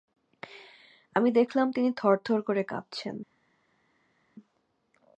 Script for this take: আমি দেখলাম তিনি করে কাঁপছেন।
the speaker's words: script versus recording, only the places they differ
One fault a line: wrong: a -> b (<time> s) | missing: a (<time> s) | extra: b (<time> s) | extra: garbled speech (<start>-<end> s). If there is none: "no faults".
extra: থরথর (1.9 s)